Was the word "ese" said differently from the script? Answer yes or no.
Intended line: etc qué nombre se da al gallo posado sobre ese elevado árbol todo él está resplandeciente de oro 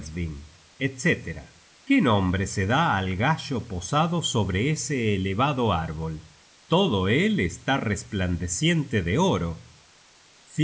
no